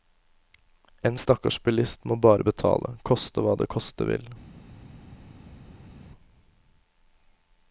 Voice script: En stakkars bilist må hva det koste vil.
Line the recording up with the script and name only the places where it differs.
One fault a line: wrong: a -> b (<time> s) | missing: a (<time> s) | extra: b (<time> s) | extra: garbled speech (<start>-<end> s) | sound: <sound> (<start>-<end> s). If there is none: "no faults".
extra: bare betale koste (2.3 s)